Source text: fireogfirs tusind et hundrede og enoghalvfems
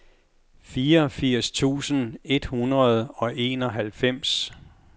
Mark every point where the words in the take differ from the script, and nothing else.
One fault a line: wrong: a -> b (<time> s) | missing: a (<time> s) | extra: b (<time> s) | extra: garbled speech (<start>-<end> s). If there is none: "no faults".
no faults